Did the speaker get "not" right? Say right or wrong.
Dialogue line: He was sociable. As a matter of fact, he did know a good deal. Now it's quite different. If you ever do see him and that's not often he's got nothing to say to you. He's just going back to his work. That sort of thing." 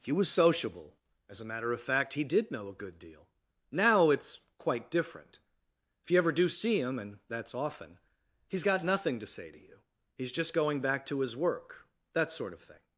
wrong